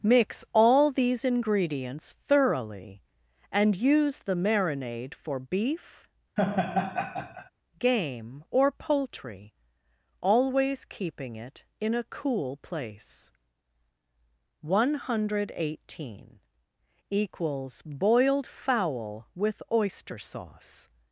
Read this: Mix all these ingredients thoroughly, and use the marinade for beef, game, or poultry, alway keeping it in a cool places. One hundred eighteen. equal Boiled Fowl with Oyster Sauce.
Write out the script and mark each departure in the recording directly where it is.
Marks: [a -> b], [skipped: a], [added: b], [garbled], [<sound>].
Mix all these ingredients thoroughly, and use the marinade for beef, [laugh] game, or poultry, [alway -> always] keeping it in a cool [places. -> place] One hundred eighteen. [equal -> equals] Boiled Fowl with Oyster Sauce.